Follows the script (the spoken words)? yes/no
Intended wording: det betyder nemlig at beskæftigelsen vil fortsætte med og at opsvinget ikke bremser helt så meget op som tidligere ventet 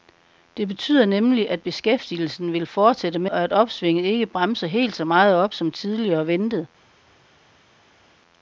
yes